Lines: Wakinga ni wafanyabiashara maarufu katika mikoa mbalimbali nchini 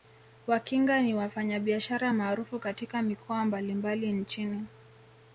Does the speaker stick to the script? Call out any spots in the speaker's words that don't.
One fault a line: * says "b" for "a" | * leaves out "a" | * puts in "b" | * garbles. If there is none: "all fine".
all fine